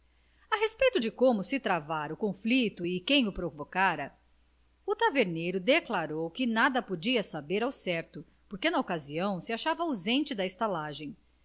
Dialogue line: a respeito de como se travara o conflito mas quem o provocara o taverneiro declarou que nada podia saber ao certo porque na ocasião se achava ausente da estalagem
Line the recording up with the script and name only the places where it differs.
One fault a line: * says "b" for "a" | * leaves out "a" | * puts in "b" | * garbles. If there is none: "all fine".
* says "e" for "mas"